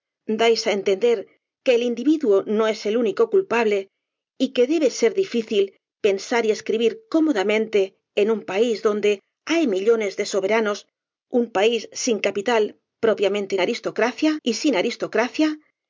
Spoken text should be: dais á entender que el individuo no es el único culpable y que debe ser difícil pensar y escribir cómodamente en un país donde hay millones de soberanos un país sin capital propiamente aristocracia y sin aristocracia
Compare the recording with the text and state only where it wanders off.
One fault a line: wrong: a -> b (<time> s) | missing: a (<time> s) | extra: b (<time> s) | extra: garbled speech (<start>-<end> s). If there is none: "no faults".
no faults